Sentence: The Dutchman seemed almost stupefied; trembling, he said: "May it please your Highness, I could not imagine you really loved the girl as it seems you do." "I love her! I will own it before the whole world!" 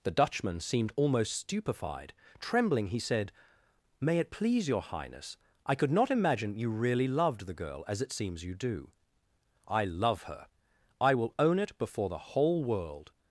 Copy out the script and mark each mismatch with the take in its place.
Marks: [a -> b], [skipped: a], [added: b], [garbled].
The Dutchman seemed almost stupefied; trembling, he said: "May it please your Highness, I could not imagine you really loved the girl as it seems you do." "I love her! I will own it before the whole world!"